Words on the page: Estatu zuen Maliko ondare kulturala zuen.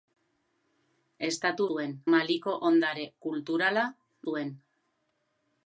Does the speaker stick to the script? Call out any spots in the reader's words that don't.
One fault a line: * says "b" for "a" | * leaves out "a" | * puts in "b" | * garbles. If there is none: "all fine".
all fine